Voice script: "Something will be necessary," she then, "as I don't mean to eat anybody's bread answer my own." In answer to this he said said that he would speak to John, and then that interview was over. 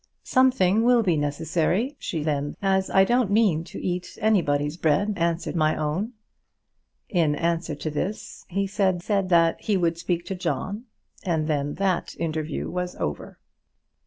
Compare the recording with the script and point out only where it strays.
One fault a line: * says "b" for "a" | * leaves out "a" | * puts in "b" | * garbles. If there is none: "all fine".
all fine